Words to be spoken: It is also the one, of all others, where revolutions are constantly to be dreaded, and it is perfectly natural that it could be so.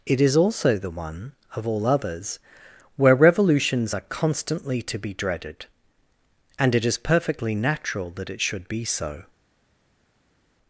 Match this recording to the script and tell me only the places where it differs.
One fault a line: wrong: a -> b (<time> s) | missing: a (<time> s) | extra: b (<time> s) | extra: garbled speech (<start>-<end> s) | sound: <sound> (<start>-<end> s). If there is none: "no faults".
wrong: could -> should (8.4 s)